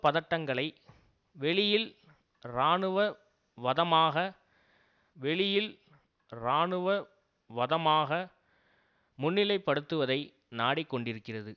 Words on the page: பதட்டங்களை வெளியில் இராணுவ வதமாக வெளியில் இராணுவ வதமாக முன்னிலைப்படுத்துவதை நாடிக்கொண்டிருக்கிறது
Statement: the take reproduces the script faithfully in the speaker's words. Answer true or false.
true